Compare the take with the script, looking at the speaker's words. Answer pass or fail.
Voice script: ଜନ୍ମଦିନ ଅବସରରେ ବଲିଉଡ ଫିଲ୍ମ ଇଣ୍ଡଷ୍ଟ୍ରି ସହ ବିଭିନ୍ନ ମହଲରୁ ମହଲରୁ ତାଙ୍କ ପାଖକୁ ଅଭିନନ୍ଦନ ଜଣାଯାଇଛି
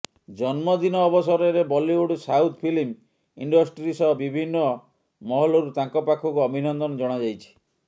fail